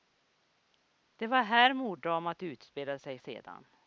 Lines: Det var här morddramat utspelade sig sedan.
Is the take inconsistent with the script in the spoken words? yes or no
no